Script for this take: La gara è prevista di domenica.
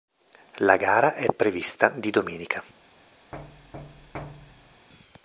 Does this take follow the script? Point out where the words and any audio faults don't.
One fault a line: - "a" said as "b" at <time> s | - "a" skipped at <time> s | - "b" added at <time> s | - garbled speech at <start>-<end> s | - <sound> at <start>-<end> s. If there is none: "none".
- thud at 3.3-4.9 s